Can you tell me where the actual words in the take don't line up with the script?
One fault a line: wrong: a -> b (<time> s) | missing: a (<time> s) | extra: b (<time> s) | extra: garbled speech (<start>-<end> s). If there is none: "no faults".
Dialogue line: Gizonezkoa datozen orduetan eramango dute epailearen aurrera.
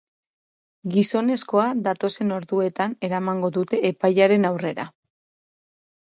no faults